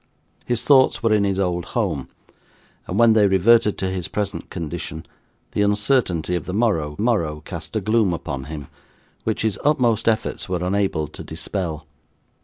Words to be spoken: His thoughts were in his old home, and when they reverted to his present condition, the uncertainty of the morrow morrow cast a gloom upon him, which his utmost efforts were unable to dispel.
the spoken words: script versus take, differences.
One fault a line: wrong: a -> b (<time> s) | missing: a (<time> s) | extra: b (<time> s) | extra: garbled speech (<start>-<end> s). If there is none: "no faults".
no faults